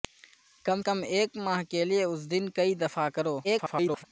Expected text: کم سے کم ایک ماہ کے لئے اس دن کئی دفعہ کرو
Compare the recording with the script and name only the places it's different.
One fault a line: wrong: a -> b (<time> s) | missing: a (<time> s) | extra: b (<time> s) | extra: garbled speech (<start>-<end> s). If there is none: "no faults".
missing: سے (0.8 s)
extra: garbled speech (3.4-4.0 s)